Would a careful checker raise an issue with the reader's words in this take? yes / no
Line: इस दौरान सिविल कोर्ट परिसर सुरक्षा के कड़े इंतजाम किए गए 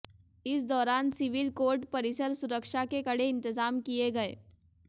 no